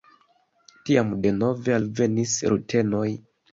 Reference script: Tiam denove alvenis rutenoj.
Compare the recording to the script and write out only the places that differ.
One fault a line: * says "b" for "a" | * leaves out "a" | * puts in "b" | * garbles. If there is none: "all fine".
all fine